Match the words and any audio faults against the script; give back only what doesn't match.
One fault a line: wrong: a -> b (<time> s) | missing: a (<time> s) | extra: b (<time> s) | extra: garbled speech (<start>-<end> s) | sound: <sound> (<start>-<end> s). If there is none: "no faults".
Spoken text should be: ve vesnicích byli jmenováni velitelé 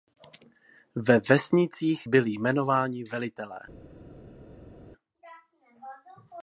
no faults